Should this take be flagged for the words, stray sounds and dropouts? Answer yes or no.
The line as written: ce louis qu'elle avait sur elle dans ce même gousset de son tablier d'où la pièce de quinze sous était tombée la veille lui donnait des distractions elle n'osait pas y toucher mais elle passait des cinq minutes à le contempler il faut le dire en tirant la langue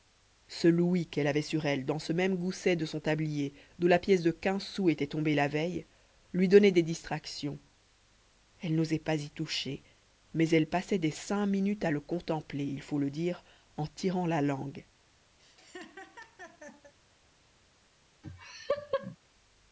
yes